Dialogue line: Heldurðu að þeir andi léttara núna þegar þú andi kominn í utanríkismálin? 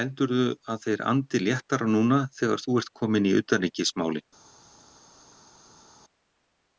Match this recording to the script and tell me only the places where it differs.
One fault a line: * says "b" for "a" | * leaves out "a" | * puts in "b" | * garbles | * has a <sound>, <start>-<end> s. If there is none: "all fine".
* says "ert" for "andi"